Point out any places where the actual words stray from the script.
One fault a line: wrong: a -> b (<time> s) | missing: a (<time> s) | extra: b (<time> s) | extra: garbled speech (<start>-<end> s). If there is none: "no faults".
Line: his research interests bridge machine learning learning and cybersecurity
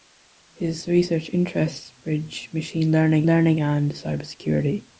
no faults